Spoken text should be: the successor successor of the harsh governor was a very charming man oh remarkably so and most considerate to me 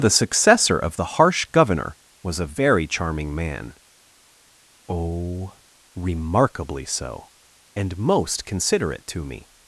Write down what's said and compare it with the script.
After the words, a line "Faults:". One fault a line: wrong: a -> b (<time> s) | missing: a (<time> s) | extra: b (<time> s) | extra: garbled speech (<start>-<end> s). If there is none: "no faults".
the successor of the harsh governor was a very charming man oh remarkably so and most considerate to me
Faults:
missing: successor (0.8 s)